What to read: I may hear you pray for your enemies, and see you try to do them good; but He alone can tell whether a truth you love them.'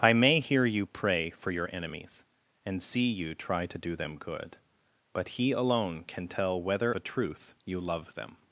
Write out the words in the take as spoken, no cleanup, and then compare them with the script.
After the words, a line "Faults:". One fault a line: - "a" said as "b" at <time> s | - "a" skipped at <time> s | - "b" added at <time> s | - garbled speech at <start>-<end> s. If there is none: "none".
I may hear you pray for your enemies, and see you try to do them good; but He alone can tell whether a truth you love them.'
Faults:
none